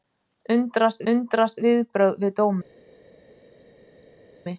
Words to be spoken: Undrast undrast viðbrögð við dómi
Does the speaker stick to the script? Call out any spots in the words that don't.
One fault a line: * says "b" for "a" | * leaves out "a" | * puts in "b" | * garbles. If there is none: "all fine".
all fine